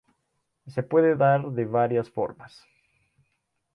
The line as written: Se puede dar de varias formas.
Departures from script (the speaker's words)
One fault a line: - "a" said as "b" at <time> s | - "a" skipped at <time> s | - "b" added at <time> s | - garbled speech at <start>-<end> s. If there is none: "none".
none